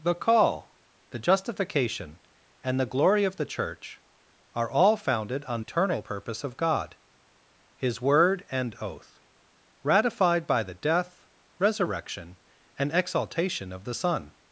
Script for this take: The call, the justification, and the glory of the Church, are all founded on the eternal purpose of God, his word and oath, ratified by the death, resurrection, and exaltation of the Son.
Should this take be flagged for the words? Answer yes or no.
yes